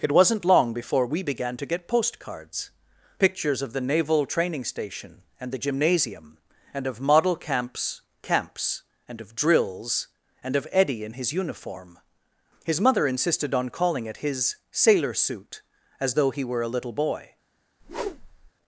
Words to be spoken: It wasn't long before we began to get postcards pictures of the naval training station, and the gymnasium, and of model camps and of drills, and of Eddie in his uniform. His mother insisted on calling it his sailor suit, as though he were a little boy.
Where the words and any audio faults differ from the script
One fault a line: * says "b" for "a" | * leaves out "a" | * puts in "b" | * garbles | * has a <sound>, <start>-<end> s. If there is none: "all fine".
* puts in "camps"
* has a whoosh, 17.8-18.5 s